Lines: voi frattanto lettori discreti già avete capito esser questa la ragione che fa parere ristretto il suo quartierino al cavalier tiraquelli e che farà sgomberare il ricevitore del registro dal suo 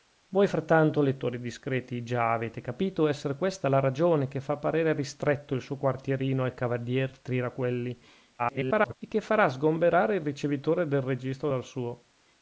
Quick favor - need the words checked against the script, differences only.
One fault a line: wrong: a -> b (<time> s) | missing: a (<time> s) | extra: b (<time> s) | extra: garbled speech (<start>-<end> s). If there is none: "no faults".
extra: garbled speech (8.4-8.9 s)